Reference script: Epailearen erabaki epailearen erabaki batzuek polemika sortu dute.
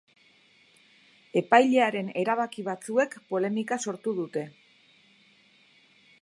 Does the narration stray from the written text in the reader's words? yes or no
yes